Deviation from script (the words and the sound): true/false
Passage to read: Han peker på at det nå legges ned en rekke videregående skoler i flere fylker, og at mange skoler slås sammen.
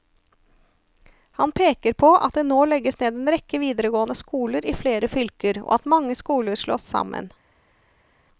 false